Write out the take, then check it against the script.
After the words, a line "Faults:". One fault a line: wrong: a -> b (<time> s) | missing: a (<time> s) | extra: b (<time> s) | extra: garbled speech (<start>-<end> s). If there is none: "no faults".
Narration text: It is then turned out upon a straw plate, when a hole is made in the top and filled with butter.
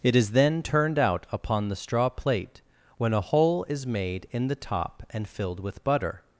It is then turned out upon the straw plate, when a hole is made in the top and filled with butter.
Faults:
wrong: a -> the (1.7 s)